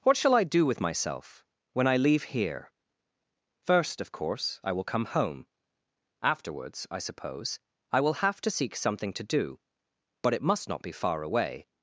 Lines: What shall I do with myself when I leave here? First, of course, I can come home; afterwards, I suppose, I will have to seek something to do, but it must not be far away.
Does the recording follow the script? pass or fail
fail